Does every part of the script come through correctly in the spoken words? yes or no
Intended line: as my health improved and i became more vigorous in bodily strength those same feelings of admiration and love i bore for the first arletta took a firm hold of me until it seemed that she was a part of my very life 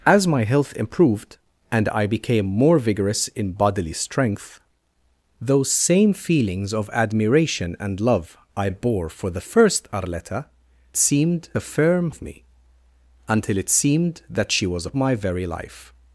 no